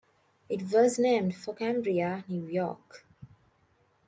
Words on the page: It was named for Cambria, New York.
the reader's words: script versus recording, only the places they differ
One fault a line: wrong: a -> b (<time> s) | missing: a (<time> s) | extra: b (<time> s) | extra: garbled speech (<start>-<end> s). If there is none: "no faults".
no faults